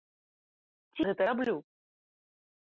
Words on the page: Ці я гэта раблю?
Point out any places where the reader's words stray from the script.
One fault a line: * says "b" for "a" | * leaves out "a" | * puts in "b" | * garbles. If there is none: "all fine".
* leaves out "я"